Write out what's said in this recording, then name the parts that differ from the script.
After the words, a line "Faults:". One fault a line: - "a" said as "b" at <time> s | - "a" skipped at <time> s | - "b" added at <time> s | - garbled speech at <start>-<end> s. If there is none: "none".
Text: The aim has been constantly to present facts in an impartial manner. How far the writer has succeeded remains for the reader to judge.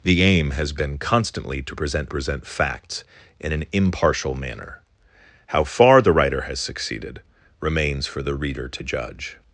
The aim has been constantly to present present facts in an impartial manner. How far the writer has succeeded remains for the reader to judge.
Faults:
- "present" added at 2.1 s